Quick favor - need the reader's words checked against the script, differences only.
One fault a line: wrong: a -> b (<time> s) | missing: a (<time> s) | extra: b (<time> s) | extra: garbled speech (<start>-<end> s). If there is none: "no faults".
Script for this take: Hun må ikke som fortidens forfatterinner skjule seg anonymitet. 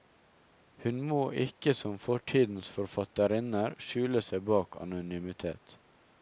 extra: bak (4.5 s)